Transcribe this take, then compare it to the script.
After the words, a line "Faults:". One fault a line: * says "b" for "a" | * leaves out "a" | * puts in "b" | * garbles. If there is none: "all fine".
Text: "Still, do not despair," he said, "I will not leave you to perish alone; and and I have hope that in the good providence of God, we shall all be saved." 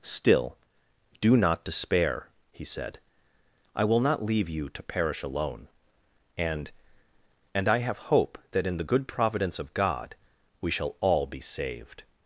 "Still, do not despair," he said, "I will not leave you to perish alone; and and I have hope that in the good providence of God, we shall all be saved."
Faults:
all fine